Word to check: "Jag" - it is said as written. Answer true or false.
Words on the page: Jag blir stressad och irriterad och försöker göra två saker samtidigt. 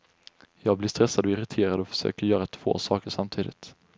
true